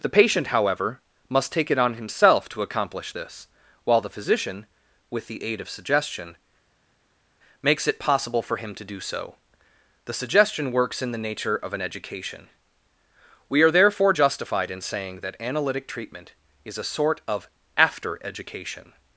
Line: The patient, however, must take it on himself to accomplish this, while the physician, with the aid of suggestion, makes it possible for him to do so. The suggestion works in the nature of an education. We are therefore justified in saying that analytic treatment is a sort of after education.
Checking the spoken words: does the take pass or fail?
pass